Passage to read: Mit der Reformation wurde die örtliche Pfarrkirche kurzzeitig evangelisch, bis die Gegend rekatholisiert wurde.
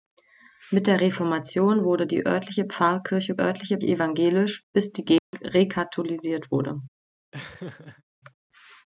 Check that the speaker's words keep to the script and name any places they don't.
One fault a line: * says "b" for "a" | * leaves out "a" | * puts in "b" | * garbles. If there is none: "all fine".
* says "örtliche" for "kurzzeitig"